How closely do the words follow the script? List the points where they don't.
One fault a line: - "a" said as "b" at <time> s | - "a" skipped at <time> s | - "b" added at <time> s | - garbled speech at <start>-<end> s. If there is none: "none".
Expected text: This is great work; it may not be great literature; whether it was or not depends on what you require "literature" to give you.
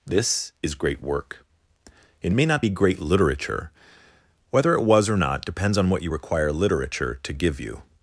none